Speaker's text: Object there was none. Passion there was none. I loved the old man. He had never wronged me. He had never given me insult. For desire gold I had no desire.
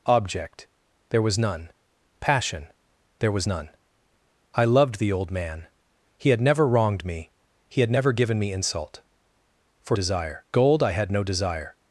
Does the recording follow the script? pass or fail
pass